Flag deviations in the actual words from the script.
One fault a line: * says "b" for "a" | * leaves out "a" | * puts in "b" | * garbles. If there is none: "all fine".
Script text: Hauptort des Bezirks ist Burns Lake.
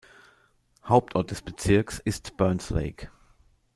all fine